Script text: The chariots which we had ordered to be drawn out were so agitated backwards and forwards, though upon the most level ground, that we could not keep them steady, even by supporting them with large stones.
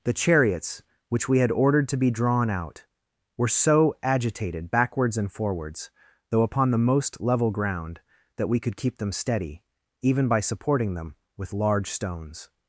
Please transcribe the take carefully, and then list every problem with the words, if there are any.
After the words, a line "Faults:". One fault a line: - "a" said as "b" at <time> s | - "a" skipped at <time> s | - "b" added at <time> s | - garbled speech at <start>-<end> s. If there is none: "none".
The chariots which we had ordered to be drawn out were so agitated backwards and forwards, though upon the most level ground, that we could keep them steady, even by supporting them with large stones.
Faults:
- "not" skipped at 8.8 s